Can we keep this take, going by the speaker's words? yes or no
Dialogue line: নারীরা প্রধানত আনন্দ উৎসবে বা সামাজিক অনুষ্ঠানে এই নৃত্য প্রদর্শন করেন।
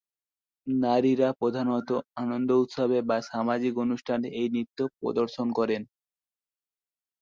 yes